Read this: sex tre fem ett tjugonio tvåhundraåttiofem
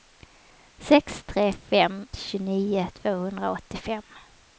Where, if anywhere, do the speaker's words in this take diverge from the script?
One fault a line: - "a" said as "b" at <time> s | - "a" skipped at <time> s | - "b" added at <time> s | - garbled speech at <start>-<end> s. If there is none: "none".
- "ett" skipped at 2.1 s